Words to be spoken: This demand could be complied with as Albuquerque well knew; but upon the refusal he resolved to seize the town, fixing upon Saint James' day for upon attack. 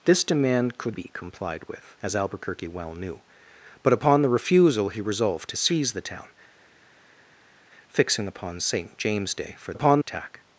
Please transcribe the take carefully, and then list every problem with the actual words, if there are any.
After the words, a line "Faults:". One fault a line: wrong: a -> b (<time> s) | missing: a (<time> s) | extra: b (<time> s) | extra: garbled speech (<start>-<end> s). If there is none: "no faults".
This demand could be complied with as Albuquerque well knew; but upon the refusal he resolved to seize the town, fixing upon Saint James' day for upon attack.
Faults:
no faults